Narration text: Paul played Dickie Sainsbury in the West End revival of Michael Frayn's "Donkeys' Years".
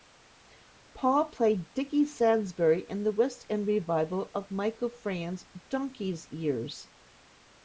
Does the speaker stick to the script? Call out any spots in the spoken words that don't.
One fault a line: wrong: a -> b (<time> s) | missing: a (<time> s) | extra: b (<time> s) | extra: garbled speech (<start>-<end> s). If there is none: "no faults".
no faults